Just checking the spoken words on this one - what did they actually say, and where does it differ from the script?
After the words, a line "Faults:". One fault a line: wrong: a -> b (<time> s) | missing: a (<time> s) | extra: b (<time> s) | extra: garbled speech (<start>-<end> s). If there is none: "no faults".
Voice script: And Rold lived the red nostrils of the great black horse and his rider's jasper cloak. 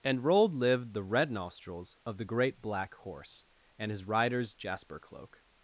And Rold lived the red nostrils of the great black horse and his rider's jasper cloak.
Faults:
no faults